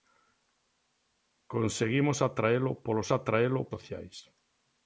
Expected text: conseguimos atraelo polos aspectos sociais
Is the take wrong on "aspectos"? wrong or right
wrong